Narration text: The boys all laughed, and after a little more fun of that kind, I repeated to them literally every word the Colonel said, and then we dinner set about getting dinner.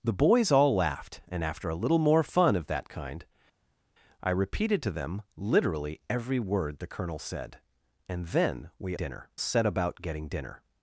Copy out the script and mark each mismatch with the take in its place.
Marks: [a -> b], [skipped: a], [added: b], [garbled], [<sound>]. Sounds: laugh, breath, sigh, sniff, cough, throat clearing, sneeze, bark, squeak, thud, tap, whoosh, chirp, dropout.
The boys all laughed, and after a little more fun of that kind, I repeated to them literally every word the Colonel said, and then we dinner set about getting dinner.